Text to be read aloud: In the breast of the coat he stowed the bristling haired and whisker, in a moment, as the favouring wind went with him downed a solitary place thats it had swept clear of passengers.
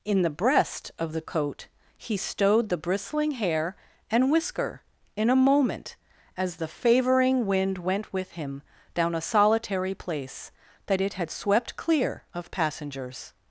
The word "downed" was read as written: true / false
false